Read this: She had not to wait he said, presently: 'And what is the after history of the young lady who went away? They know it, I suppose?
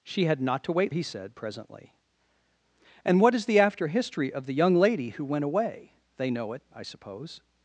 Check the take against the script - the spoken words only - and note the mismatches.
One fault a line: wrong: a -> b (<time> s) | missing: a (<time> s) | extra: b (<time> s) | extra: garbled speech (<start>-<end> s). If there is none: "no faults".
no faults